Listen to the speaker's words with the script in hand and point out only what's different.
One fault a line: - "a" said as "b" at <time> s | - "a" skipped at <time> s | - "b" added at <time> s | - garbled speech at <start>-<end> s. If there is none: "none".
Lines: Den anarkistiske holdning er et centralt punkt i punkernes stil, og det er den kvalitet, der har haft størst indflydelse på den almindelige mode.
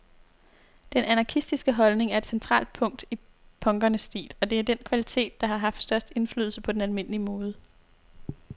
none